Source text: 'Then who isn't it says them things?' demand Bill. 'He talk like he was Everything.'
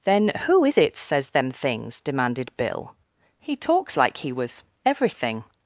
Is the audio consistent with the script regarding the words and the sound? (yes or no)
no